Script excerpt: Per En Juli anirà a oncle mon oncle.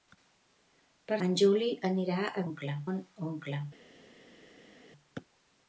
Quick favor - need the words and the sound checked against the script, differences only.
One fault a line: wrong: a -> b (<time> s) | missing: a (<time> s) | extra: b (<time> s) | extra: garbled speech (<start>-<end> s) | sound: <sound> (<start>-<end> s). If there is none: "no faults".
no faults